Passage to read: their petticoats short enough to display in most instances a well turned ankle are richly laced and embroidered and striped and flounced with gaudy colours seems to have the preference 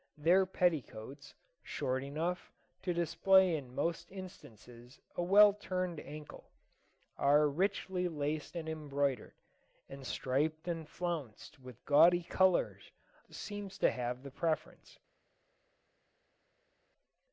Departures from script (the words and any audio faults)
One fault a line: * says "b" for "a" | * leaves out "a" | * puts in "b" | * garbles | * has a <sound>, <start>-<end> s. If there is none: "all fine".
all fine